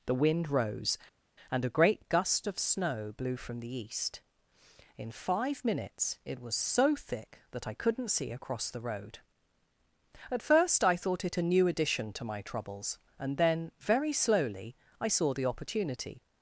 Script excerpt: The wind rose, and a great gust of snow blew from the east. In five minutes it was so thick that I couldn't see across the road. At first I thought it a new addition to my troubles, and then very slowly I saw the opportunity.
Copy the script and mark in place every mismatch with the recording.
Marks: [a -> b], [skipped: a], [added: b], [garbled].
The wind rose, and a great gust of snow blew from the east. In five minutes it was so thick that I couldn't see across the road. At first I thought it a new addition to my troubles, and then very slowly I saw the opportunity.